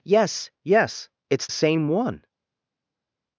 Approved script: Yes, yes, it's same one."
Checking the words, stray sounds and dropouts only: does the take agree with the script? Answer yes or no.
yes